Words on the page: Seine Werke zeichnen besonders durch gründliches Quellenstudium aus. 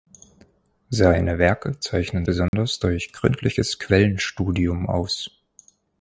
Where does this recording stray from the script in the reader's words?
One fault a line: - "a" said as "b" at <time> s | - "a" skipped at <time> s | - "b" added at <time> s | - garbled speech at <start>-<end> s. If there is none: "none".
none